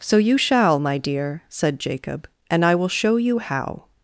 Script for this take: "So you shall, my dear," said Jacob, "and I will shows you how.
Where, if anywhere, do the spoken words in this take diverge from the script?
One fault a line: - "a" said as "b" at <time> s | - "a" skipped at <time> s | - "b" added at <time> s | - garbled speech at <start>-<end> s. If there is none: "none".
- "shows" said as "show" at 2.9 s